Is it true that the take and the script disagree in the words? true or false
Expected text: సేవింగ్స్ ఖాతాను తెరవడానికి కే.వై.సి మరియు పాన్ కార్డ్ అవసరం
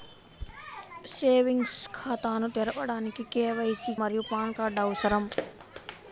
false